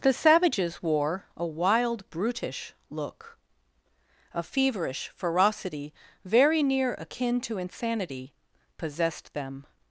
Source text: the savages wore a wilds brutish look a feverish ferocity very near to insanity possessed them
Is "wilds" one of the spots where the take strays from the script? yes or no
yes